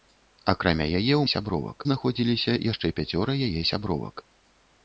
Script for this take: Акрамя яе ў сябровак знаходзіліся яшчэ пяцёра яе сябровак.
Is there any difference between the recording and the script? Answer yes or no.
no